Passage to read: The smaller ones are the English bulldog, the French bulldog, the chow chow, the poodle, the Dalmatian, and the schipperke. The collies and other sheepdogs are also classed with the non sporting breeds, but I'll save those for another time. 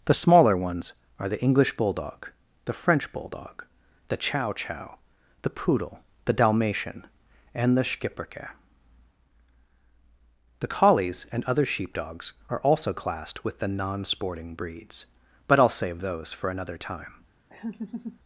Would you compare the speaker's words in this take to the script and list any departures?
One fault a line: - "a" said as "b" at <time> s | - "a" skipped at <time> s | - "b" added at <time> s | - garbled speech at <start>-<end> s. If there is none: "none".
none